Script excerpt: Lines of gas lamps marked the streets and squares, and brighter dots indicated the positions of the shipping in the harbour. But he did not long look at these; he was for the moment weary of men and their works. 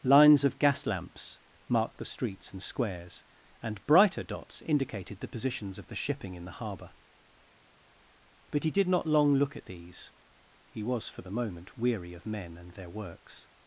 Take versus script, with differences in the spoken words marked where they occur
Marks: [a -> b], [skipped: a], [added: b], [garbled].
Lines of gas lamps marked the streets and squares, and brighter dots indicated the positions of the shipping in the harbour. But he did not long look at these; he was for the moment weary of men and their works.